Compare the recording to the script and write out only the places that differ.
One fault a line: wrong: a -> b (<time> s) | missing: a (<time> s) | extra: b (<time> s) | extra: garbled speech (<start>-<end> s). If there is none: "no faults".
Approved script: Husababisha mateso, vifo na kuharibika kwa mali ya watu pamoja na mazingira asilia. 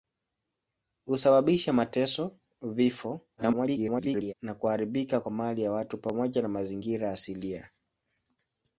extra: garbled speech (3.4-4.3 s)